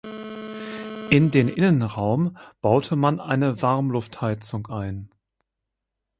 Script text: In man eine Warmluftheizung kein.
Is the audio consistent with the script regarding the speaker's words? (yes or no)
no